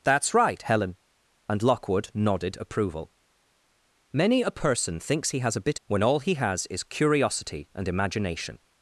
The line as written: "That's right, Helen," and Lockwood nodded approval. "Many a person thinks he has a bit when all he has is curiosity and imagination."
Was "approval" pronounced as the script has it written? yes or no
yes